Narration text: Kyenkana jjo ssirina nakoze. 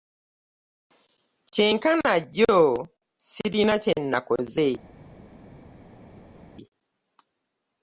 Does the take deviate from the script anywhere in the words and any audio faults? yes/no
yes